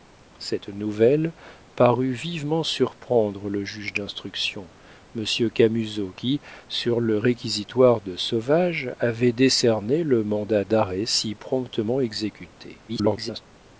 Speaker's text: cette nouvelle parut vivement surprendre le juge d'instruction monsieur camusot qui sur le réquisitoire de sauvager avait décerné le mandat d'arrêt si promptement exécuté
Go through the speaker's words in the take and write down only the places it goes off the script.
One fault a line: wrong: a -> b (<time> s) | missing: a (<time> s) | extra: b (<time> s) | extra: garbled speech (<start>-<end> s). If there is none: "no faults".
extra: garbled speech (12.9-13.4 s)